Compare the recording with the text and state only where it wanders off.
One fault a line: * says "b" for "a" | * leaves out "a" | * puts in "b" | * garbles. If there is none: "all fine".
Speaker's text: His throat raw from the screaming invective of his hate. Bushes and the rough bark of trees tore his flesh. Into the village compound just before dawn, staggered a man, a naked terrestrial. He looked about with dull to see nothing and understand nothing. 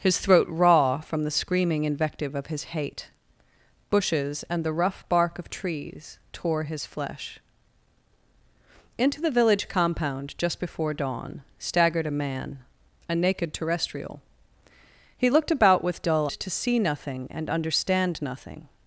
all fine